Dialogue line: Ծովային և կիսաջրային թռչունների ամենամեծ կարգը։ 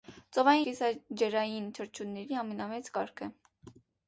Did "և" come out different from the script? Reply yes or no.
yes